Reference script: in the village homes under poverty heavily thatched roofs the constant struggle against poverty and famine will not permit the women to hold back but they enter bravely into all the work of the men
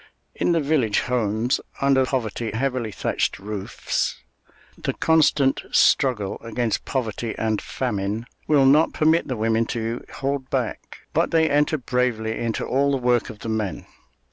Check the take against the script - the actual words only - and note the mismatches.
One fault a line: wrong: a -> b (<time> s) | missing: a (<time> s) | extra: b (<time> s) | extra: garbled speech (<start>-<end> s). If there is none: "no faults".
no faults